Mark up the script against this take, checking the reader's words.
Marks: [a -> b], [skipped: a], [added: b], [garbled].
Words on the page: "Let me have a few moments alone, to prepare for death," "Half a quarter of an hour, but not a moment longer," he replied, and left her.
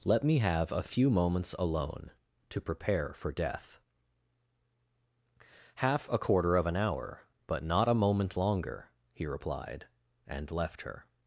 "Let me have a few moments alone, to prepare for death," "Half a quarter of an hour, but not a moment longer," he replied, and left her.